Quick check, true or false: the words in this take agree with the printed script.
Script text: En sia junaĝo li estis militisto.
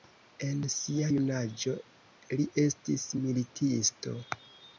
true